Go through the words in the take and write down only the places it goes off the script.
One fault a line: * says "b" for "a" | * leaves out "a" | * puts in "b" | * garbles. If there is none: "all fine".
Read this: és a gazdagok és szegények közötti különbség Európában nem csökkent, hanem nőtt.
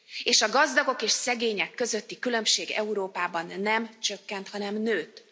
all fine